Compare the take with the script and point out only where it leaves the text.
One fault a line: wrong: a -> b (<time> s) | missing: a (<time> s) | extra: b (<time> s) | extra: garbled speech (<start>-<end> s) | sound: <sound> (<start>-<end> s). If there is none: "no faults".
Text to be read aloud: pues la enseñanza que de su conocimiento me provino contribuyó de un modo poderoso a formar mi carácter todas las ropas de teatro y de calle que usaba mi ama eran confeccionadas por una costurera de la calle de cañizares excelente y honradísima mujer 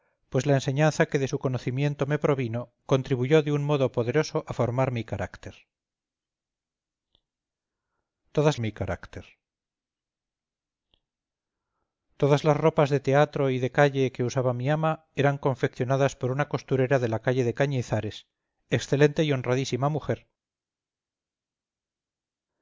extra: mi carácter todas (8.6 s)